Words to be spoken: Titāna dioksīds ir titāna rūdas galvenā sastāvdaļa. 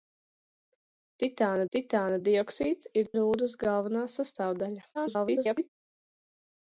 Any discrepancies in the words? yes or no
yes